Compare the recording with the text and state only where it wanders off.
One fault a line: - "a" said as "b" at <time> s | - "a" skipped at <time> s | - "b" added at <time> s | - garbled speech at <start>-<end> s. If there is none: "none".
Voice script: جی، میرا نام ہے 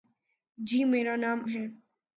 none